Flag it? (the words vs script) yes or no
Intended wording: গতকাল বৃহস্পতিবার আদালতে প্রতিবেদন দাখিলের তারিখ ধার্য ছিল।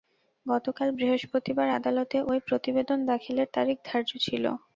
yes